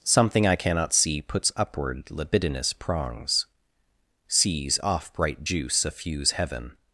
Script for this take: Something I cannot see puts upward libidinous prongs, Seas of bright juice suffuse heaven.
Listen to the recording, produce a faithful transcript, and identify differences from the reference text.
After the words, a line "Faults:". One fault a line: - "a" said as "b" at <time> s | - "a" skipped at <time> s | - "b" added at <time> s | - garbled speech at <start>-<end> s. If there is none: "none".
Something I cannot see puts upward libidinous prongs, Seas off bright juice suffuse heaven.
Faults:
- "of" said as "off" at 4.8 s